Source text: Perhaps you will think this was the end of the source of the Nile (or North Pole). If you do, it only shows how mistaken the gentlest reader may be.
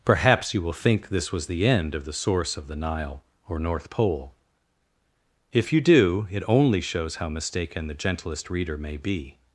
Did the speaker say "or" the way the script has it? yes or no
yes